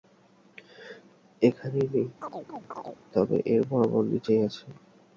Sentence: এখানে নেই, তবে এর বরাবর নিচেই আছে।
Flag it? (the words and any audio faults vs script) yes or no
yes